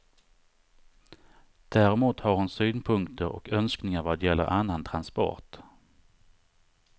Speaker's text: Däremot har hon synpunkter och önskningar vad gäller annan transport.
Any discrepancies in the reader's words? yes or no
no